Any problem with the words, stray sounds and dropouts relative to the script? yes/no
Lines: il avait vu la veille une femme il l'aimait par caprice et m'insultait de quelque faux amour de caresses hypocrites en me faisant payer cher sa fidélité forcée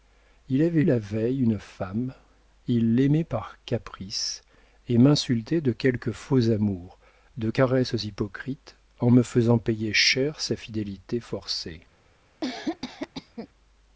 yes